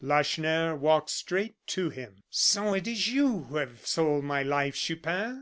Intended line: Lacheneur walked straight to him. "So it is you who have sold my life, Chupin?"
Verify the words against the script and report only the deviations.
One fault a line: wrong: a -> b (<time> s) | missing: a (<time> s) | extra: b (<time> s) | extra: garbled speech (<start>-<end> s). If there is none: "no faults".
no faults